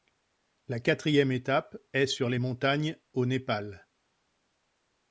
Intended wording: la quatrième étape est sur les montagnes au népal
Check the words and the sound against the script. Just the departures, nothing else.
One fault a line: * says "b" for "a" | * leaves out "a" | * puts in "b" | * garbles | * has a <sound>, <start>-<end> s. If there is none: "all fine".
all fine